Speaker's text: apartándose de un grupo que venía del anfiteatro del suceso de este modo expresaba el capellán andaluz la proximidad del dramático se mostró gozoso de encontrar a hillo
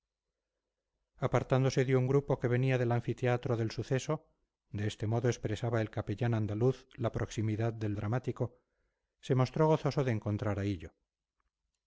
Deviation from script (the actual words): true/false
false